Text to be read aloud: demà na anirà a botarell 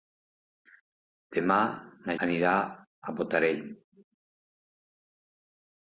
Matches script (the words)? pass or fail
pass